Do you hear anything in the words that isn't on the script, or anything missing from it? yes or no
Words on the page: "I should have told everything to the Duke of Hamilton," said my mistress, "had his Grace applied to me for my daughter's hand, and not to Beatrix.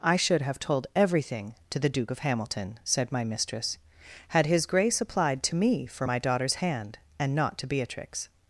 no